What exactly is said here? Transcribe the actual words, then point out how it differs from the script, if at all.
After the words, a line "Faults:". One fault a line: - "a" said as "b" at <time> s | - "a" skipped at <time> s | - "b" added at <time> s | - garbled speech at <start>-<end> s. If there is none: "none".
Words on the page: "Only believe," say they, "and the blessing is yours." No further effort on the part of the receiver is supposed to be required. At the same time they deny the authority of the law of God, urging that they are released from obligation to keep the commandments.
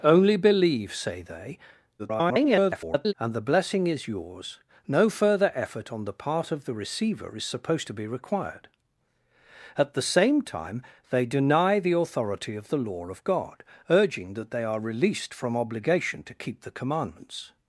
"Only believe," say they, [garbled] "and the blessing is yours." No further effort on the part of the receiver is supposed to be required. At the same time they deny the authority of the law of God, urging that they are released from obligation to keep the commandments.
Faults:
- garbled speech at 2.0-3.1 s